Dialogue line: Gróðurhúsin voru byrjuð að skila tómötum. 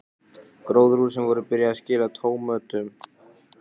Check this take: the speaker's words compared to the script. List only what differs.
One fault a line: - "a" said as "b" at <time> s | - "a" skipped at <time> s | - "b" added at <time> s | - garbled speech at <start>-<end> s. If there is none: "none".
none